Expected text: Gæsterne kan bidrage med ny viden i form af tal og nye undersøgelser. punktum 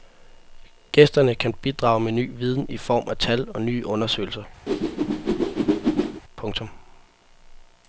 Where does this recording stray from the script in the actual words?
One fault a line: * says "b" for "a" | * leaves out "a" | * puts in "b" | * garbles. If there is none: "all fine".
all fine